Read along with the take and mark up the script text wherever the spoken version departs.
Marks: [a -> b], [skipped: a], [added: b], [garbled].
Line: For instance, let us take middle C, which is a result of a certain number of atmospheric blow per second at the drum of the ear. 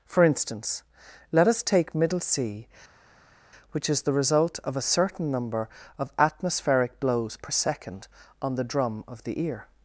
For instance, let us take middle C, which is [a -> the] result of a certain number of atmospheric [blow -> blows] per second [at -> on] the drum of the ear.